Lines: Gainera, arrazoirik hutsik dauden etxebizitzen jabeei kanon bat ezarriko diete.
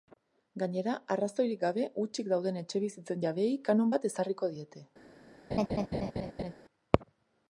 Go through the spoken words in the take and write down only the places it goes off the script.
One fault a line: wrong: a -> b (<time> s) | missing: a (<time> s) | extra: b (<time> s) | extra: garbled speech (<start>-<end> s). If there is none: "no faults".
extra: gabe (1.6 s)